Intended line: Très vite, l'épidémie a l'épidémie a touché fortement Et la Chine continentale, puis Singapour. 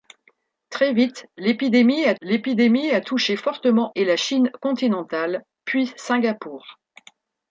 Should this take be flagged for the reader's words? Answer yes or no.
no